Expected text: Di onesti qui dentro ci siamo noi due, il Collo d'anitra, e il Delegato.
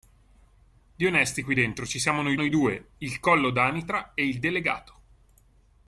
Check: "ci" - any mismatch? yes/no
no